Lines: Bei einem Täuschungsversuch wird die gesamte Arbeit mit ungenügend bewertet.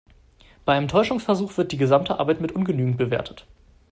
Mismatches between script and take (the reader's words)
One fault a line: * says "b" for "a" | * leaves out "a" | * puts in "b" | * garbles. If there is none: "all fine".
all fine